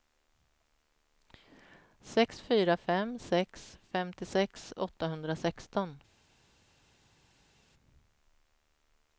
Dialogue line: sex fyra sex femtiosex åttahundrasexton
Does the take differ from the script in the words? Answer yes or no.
yes